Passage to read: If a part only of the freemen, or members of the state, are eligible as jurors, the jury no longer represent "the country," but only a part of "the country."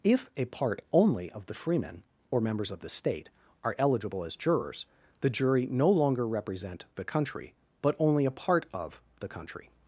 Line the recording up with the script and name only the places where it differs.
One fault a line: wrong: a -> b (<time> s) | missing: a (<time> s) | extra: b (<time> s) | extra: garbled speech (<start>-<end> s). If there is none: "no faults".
no faults